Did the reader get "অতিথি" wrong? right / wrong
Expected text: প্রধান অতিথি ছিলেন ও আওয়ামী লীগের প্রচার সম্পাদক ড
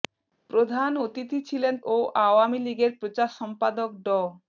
right